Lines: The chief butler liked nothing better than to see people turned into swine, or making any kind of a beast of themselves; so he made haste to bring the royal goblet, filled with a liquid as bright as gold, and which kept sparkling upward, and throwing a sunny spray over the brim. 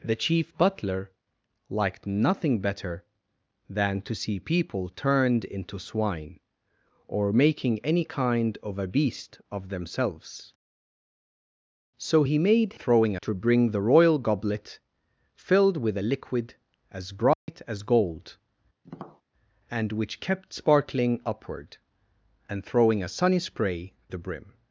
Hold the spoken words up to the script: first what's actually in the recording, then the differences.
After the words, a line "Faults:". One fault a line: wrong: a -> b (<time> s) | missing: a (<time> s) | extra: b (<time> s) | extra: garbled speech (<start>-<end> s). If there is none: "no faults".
The chief butler liked nothing better than to see people turned into swine, or making any kind of a beast of themselves; so he made throwing to bring the royal goblet, filled with a liquid as bright as gold, and which kept sparkling upward, and throwing a sunny spray the brim.
Faults:
wrong: haste -> throwing (12.8 s)
missing: over (23.9 s)